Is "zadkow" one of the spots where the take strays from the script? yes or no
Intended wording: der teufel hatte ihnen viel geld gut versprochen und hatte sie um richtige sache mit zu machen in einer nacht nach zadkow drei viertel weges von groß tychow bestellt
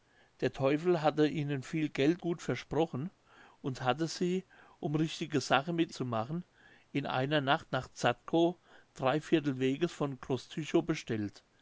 no